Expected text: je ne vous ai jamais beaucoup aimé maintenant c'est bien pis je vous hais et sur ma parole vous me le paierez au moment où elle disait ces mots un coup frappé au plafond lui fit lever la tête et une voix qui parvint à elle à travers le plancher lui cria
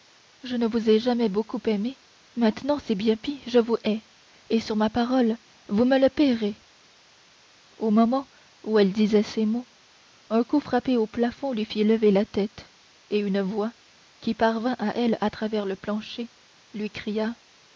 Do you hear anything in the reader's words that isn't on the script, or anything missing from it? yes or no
no